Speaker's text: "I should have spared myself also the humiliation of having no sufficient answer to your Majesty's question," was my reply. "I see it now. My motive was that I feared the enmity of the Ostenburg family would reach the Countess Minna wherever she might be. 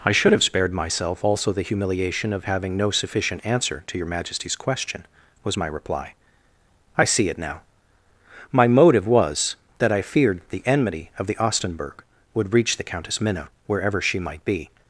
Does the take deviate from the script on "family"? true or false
true